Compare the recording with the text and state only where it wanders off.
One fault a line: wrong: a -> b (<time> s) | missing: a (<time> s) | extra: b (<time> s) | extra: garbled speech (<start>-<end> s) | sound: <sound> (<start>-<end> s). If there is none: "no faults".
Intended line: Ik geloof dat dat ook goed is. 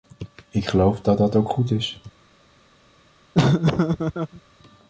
sound: laugh (3.3-4.4 s)